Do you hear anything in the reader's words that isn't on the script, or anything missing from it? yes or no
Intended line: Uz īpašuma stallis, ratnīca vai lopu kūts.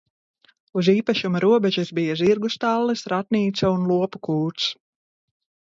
yes